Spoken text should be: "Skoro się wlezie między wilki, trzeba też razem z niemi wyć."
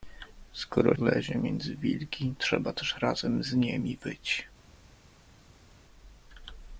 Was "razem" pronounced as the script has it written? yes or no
yes